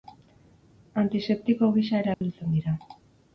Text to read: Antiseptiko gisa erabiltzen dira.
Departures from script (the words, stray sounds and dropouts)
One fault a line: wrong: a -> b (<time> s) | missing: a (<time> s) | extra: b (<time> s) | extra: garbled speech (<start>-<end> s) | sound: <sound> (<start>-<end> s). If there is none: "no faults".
sound: dropout (2.1-2.2 s)